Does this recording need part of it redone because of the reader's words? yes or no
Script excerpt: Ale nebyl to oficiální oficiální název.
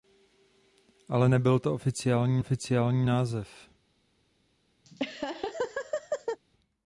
no